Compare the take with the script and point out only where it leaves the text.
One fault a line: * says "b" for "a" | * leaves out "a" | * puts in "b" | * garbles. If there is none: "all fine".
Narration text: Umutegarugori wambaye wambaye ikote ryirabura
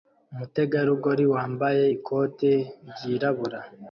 * leaves out "wambaye"